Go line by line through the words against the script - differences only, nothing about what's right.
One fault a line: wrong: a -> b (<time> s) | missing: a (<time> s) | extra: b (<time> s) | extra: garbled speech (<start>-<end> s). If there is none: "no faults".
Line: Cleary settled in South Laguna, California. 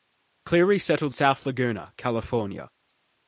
missing: in (1.1 s)